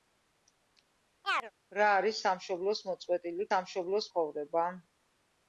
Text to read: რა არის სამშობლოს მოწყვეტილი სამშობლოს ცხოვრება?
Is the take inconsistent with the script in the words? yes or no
no